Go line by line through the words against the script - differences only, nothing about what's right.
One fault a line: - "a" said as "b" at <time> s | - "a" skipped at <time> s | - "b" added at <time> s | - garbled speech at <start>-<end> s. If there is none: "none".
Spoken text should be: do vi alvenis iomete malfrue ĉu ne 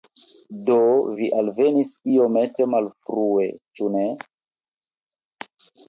none